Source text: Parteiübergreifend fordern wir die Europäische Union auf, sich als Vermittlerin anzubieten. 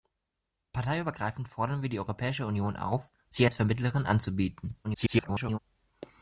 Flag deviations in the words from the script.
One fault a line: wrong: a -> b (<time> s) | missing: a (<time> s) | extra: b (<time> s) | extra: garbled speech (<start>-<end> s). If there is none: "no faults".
extra: garbled speech (4.8-5.6 s)